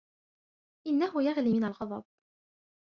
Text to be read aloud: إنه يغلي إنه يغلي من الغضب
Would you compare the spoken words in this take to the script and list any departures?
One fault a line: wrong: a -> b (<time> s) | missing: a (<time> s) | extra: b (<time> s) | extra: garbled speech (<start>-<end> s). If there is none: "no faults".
missing: إنه يغلي (1.5 s)